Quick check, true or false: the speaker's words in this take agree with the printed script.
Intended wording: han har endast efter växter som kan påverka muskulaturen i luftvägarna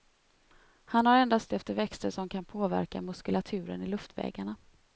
true